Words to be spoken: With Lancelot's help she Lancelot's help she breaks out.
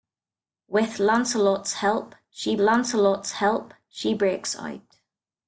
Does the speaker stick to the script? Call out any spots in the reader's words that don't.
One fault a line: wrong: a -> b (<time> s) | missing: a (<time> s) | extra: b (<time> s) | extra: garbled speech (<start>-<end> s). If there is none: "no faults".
no faults